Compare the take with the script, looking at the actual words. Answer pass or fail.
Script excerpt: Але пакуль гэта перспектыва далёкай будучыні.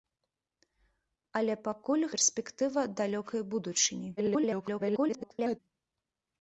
fail